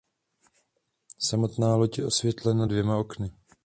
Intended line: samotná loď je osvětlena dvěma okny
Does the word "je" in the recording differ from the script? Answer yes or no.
no